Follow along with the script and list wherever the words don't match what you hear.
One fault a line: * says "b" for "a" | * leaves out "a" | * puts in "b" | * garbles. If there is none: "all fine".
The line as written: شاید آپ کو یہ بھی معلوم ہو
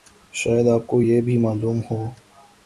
all fine